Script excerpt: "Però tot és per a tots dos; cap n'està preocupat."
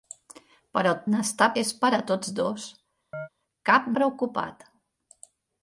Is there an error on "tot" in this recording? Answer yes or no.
yes